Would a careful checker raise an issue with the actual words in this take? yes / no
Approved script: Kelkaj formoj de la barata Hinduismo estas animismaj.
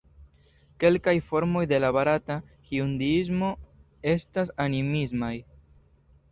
no